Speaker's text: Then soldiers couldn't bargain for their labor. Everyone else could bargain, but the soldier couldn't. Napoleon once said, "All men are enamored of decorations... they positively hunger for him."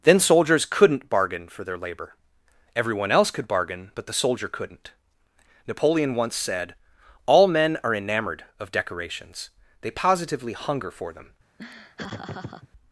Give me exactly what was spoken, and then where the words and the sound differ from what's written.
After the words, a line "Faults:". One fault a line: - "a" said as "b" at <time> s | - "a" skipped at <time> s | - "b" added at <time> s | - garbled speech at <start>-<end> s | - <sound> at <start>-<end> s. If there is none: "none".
Then soldiers couldn't bargain for their labor. Everyone else could bargain, but the soldier couldn't. Napoleon once said, "All men are enamored of decorations... they positively hunger for them."
Faults:
- "him" said as "them" at 11.1 s
- laugh at 11.6-12.7 s